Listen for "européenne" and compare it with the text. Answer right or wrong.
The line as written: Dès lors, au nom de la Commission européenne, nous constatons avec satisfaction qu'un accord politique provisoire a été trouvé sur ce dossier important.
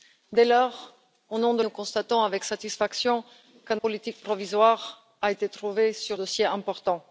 wrong